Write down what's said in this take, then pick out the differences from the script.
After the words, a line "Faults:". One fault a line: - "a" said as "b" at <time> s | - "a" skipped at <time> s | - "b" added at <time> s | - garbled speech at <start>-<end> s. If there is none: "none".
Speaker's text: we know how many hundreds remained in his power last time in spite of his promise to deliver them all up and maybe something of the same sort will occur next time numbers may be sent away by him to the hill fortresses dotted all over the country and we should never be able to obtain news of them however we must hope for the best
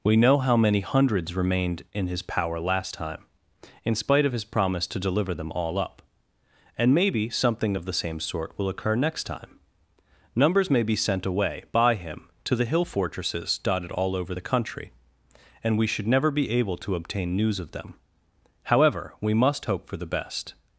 we know how many hundreds remained in his power last time in spite of his promise to deliver them all up and maybe something of the same sort will occur next time numbers may be sent away by him to the hill fortresses dotted all over the country and we should never be able to obtain news of them however we must hope for the best
Faults:
none